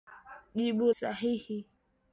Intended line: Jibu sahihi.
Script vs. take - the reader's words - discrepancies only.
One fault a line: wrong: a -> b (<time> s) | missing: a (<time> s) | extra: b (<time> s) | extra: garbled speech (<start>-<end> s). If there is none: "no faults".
no faults